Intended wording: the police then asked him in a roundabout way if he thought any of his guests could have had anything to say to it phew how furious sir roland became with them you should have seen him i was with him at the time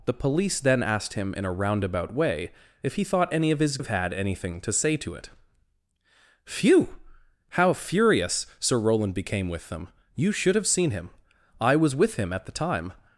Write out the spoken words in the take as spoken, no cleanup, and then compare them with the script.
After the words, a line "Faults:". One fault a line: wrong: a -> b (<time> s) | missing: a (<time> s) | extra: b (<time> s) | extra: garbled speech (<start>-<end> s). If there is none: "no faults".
the police then asked him in a roundabout way if he thought any of his have had anything to say to it phew how furious sir roland became with them you should have seen him i was with him at the time
Faults:
missing: guests could (3.8 s)